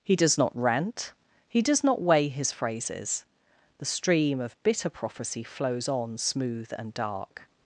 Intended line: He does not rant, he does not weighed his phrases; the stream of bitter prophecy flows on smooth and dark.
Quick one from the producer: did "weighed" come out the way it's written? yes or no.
no